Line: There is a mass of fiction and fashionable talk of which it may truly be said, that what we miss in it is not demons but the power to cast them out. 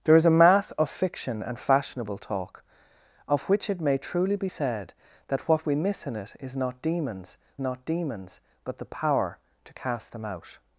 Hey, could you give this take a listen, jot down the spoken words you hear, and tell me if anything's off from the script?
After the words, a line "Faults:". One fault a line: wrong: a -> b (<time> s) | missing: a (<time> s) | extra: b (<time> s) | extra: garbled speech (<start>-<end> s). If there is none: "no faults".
There is a mass of fiction and fashionable talk of which it may truly be said, that what we miss in it is not demons not demons but the power to cast them out.
Faults:
extra: not demons (7.6 s)